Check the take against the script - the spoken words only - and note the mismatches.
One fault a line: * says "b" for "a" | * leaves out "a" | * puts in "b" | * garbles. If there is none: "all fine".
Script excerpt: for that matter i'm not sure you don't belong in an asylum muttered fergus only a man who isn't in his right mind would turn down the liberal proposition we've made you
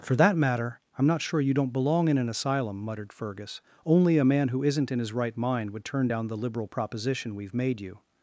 all fine